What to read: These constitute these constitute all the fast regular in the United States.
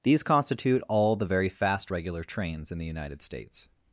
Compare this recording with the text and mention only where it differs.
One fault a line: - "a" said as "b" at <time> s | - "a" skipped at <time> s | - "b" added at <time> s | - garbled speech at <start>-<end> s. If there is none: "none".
- "these constitute" skipped at 0.8 s
- "very" added at 1.2 s
- "trains" added at 2.2 s